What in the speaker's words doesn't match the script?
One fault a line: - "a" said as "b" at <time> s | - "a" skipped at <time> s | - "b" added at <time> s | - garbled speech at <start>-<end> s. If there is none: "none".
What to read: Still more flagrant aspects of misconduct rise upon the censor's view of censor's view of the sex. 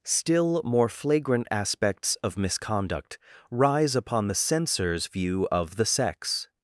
- "censor's view of" skipped at 5.8 s